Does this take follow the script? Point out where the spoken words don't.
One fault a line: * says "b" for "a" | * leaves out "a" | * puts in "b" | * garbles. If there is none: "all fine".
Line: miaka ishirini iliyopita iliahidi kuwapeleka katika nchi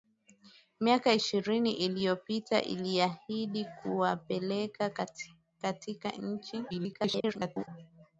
* garbles